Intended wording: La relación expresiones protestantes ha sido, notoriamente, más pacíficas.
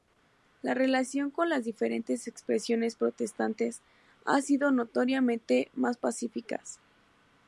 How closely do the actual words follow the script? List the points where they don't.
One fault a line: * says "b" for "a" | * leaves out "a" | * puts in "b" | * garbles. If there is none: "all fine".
* puts in "con las diferentes"